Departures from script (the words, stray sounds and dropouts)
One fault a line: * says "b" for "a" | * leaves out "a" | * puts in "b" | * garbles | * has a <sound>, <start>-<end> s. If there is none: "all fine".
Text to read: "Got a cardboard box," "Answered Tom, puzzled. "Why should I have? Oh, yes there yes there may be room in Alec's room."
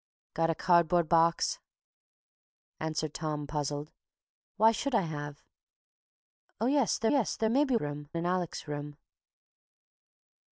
all fine